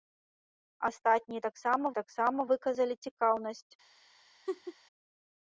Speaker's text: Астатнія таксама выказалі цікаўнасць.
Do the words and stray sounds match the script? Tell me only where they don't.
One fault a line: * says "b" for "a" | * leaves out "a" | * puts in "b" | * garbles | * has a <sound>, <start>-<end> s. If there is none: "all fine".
* puts in "таксама"
* has a laugh, 4.5-4.8 s